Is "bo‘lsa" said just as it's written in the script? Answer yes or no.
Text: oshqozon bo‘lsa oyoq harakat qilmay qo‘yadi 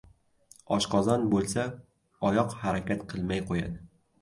yes